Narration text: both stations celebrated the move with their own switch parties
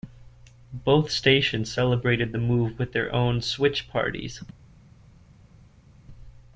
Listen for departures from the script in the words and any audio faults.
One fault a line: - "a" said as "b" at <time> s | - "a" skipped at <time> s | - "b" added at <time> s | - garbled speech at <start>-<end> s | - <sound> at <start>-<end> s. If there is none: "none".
none